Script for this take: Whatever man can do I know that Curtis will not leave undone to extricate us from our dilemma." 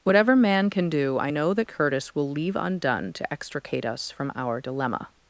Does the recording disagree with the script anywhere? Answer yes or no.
yes